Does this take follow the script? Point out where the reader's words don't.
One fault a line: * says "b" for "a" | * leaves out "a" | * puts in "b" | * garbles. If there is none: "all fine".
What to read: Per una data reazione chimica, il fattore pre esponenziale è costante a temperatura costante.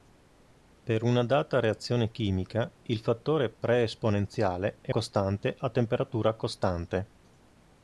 all fine